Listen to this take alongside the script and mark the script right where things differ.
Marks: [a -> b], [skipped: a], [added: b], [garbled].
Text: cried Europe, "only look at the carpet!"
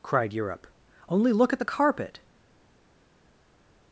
cried Europe, "only look at the carpet!"